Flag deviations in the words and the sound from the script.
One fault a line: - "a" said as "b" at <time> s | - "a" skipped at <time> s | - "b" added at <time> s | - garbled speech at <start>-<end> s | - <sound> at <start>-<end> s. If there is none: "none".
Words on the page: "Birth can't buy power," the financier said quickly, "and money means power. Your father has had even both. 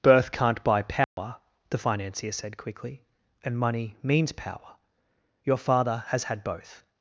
- dropout at 1.0-1.2 s
- "even" skipped at 6.4 s